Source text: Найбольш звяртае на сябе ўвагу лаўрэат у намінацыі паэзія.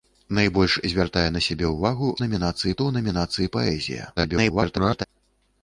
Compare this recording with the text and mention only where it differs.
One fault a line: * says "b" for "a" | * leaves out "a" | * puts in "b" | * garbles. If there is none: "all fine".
* says "намінацыі" for "лаўрэат"
* garbles